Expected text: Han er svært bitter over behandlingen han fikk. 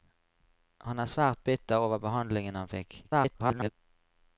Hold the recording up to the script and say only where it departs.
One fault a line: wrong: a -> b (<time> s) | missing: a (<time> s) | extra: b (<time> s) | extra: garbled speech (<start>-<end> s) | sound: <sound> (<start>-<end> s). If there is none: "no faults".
extra: garbled speech (3.0-3.7 s)